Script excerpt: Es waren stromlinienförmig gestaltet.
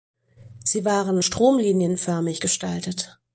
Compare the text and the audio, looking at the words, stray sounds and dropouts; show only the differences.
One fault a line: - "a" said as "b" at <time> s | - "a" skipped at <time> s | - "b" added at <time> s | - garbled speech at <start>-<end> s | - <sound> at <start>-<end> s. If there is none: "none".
- "Es" said as "Sie" at 0.6 s